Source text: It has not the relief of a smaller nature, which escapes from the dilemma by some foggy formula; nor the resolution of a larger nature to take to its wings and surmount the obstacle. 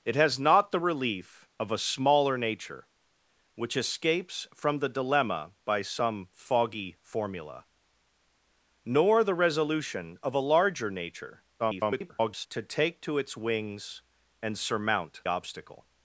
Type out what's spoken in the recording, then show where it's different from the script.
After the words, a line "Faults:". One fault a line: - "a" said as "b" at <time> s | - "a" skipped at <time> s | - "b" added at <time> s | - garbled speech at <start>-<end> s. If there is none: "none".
It has not the relief of a smaller nature, which escapes from the dilemma by some foggy formula; nor the resolution of a larger nature [garbled] to take to its wings and surmount obstacle.
Faults:
- garbled speech at 11.6-12.5 s
- "the" skipped at 15.2 s